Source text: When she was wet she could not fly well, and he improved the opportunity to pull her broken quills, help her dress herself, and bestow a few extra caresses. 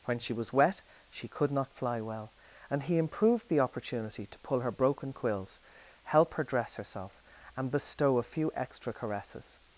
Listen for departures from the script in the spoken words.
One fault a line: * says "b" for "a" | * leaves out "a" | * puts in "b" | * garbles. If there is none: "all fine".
all fine